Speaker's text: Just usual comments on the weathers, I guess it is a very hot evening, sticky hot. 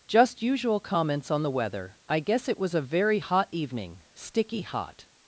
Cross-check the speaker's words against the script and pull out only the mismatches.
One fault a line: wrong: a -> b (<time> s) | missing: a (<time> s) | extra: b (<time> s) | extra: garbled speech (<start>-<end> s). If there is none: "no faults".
wrong: weathers -> weather (1.5 s)
wrong: is -> was (2.6 s)